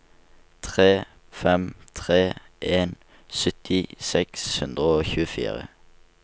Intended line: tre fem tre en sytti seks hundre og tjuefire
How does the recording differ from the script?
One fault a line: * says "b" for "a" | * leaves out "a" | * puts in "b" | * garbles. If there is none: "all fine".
all fine